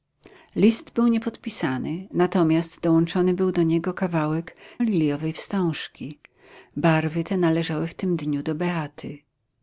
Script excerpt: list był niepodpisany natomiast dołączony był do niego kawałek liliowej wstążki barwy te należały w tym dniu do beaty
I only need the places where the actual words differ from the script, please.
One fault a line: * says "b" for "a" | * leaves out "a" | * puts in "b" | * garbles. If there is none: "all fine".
all fine